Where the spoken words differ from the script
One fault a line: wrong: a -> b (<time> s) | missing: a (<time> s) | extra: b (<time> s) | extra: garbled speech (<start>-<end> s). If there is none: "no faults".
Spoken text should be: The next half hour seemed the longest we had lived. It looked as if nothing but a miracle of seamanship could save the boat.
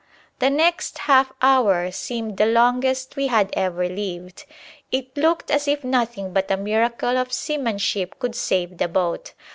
extra: ever (3.5 s)